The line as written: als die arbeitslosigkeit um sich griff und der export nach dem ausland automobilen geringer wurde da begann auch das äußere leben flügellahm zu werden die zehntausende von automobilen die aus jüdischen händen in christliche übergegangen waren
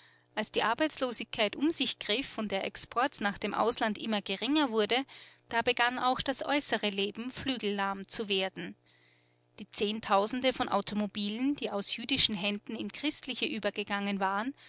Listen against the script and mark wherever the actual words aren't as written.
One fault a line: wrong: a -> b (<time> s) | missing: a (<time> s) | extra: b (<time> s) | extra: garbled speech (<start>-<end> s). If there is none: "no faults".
wrong: automobilen -> immer (4.0 s)